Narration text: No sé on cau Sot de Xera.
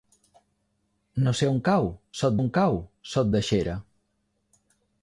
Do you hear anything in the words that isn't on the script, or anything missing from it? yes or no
yes